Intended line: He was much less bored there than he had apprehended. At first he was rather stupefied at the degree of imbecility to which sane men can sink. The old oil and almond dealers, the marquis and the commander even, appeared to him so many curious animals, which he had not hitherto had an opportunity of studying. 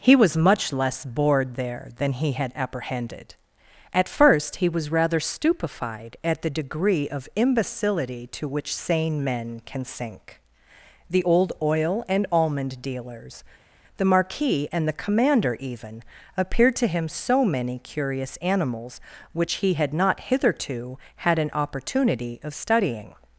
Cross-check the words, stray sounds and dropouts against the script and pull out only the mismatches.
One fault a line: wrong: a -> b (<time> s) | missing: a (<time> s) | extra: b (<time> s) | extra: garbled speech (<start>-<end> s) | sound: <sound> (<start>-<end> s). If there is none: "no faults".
no faults